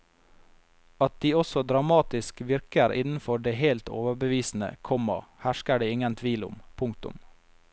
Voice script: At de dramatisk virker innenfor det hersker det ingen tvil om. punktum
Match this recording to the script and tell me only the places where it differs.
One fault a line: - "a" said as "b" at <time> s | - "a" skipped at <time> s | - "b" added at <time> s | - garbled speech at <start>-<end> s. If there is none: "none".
- "også" added at 1.4 s
- "helt overbevisende komma" added at 3.6 s